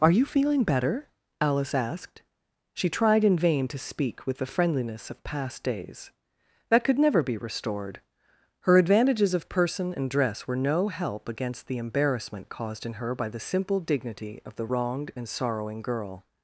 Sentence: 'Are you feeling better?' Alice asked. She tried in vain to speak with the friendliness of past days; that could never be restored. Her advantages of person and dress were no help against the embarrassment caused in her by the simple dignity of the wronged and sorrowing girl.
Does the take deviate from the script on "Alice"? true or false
false